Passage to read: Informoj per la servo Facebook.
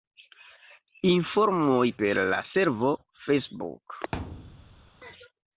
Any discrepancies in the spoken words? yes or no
no